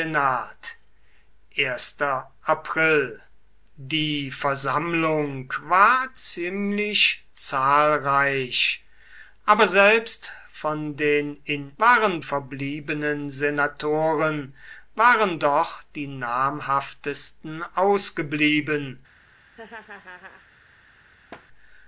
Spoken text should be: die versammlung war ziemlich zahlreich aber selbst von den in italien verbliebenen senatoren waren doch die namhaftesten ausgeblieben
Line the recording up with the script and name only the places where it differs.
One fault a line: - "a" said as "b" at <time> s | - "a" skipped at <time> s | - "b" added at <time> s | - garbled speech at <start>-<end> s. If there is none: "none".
- "italien" said as "waren" at 11.8 s